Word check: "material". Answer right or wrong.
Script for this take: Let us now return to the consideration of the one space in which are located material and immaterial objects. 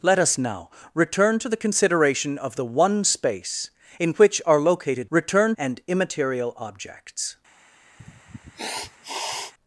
wrong